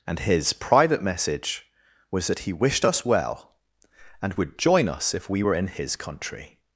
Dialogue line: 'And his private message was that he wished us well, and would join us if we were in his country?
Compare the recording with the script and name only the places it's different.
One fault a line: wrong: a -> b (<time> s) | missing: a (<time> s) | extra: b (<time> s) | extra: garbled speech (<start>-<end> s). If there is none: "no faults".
no faults